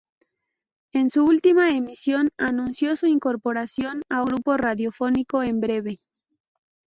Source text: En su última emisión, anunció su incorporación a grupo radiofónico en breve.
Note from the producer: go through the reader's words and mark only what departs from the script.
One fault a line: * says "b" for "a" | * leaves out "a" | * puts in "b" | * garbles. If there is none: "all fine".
all fine